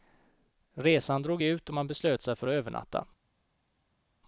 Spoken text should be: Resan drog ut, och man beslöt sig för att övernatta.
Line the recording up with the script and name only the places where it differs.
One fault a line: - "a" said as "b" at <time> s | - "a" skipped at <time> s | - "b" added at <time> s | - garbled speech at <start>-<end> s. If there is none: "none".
none